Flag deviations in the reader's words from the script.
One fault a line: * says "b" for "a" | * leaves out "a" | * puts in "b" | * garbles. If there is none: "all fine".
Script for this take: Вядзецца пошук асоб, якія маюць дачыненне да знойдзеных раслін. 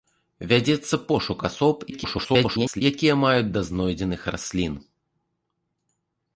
* garbles
* leaves out "дачыненне"